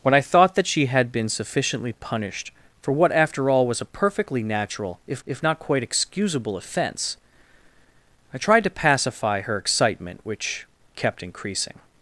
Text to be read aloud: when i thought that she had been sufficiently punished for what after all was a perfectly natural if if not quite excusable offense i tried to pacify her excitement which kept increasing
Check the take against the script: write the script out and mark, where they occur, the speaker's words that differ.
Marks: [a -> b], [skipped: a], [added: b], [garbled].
when i thought that she had been sufficiently punished for what after all was a perfectly natural if if not quite excusable offense i tried to pacify her excitement which kept increasing